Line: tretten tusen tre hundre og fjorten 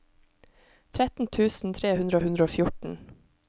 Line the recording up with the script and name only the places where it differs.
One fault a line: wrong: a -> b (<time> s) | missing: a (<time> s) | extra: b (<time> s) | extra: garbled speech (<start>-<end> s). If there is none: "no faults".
extra: hundre (2.3 s)